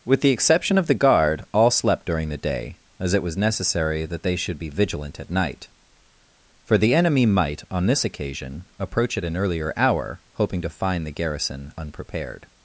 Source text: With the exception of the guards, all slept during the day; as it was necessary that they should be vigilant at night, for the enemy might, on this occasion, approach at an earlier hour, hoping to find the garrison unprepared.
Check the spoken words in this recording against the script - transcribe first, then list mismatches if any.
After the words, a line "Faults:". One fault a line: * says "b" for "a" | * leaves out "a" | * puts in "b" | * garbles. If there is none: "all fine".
With the exception of the guard, all slept during the day; as it was necessary that they should be vigilant at night, for the enemy might, on this occasion, approach at an earlier hour, hoping to find the garrison unprepared.
Faults:
* says "guard" for "guards"